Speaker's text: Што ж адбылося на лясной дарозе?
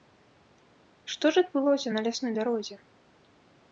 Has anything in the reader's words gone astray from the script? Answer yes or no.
no